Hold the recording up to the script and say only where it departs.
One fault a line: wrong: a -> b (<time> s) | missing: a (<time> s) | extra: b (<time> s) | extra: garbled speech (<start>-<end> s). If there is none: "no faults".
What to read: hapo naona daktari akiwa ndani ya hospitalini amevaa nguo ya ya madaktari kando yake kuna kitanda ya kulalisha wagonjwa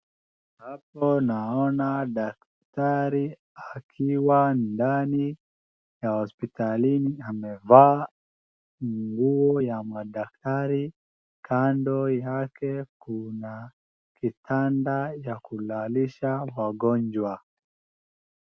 missing: ya (9.8 s)